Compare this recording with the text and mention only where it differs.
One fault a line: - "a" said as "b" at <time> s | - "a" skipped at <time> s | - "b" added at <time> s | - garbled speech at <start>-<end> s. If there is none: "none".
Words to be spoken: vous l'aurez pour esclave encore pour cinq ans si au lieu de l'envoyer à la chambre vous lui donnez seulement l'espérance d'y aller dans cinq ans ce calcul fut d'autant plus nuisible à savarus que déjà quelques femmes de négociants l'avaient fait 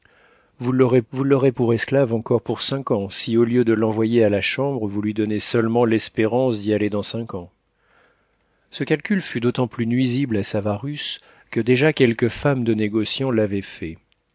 - "vous l'aurez" added at 1.1 s